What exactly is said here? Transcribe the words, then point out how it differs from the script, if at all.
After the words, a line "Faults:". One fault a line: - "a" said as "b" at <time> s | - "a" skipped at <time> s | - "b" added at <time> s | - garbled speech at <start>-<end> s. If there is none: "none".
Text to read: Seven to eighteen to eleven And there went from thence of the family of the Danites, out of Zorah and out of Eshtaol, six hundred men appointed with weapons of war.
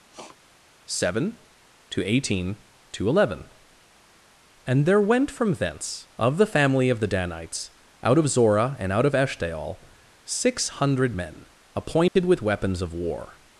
Seven to eighteen to eleven And there went from thence of the family of the Danites, out of Zorah and out of Eshtaol, six hundred men appointed with weapons of war.
Faults:
none